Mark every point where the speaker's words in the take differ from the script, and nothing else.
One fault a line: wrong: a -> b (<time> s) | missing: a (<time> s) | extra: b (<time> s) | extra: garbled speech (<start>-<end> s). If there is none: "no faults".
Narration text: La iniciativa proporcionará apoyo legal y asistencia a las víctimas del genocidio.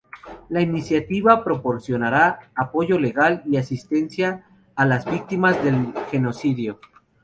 no faults